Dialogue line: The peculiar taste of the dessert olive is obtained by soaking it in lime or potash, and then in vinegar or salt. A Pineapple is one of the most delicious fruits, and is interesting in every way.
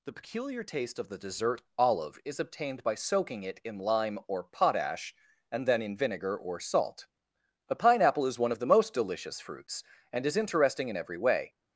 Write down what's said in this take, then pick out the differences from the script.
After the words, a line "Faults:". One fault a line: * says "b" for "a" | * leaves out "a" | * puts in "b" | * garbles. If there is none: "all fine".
The peculiar taste of the dessert olive is obtained by soaking it in lime or potash, and then in vinegar or salt. A Pineapple is one of the most delicious fruits, and is interesting in every way.
Faults:
all fine